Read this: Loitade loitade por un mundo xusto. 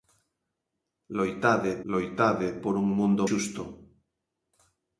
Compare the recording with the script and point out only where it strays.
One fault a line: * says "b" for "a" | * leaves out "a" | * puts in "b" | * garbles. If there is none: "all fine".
all fine